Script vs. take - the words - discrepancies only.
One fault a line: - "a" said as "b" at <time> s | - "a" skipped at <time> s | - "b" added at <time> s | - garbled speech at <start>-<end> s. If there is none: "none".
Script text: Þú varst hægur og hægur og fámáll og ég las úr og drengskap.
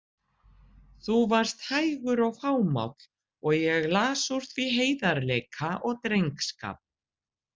- "hægur og" skipped at 2.4 s
- "því heiðarleika" added at 4.5 s